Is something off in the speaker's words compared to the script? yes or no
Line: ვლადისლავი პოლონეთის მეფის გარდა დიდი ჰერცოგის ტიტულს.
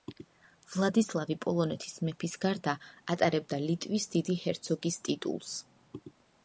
yes